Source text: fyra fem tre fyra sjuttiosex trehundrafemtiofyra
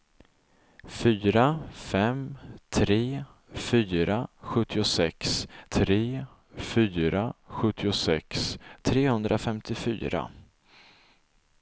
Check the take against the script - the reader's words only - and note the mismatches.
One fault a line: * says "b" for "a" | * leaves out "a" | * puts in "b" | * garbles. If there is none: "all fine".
* puts in "tre fyra sjuttiosex"